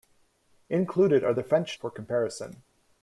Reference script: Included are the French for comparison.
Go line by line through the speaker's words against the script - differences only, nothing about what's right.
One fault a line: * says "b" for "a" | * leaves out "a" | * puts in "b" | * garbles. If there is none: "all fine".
all fine